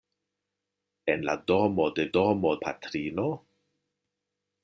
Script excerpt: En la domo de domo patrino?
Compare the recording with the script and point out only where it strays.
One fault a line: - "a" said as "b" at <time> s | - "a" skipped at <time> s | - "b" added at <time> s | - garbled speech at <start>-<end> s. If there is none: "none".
none